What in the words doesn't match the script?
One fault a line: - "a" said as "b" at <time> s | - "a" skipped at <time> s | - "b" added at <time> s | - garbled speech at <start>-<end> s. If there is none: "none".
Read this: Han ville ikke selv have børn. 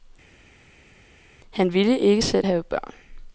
none